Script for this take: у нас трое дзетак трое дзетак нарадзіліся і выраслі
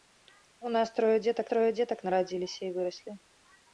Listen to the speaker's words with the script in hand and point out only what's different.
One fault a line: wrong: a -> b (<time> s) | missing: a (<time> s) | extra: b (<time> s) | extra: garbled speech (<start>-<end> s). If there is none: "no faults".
no faults